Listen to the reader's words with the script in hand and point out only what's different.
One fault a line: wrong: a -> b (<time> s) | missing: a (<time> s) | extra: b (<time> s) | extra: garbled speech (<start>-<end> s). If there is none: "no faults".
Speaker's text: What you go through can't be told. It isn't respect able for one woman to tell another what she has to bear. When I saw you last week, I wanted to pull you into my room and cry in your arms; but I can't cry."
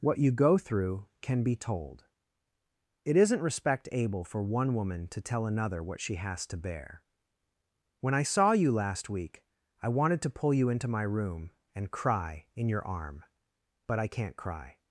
wrong: can't -> can (1.2 s)
wrong: arms -> arm (12.8 s)